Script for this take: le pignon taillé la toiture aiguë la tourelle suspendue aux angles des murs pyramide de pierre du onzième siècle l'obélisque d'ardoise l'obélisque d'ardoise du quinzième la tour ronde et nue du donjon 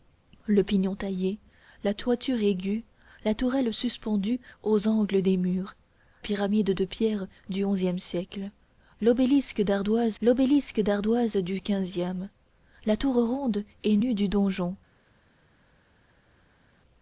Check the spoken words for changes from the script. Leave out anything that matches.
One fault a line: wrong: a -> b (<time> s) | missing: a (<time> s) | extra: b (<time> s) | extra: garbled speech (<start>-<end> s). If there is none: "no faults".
no faults